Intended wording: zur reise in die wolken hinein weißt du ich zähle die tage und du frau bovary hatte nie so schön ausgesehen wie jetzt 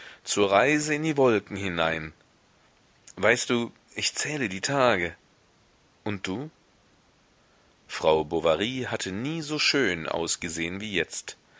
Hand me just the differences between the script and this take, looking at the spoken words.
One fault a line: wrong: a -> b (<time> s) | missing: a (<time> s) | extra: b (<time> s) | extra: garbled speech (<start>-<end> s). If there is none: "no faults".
no faults